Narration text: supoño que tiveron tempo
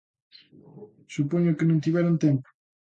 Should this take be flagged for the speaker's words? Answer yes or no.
yes